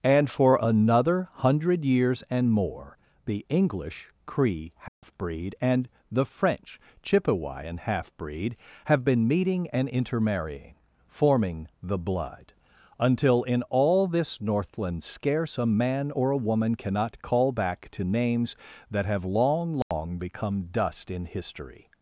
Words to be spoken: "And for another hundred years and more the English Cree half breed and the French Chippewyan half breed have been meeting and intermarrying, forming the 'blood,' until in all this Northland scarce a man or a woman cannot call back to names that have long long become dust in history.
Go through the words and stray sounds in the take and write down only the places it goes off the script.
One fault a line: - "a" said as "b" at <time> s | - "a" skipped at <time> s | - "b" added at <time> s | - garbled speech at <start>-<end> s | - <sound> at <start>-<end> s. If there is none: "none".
- dropout at 4.9-5.0 s
- dropout at 19.8-19.9 s